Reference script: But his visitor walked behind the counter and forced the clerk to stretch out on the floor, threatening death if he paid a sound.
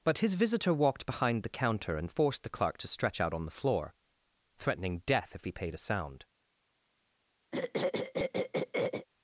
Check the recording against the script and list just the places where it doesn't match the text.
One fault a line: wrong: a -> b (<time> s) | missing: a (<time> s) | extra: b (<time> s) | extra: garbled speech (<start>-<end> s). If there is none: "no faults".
no faults